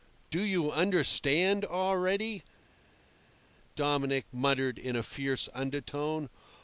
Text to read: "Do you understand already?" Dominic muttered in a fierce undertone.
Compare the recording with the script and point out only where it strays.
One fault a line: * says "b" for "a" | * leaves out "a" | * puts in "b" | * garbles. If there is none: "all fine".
all fine